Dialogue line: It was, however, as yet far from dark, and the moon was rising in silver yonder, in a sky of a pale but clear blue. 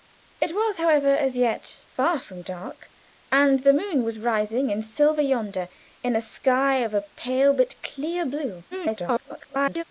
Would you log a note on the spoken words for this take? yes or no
yes